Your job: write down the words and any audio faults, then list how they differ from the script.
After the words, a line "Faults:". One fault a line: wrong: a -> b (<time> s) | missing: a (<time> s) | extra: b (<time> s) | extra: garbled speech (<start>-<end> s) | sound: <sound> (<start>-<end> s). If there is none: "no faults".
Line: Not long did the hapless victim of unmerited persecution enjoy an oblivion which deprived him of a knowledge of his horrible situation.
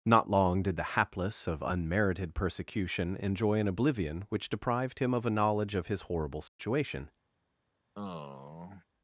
Not long did the hapless of unmerited persecution enjoy an oblivion which deprived him of a knowledge of his horrible situation.
Faults:
missing: victim (1.4 s)
sound: dropout (6.5-6.6 s)
sound: sigh (7.9-8.8 s)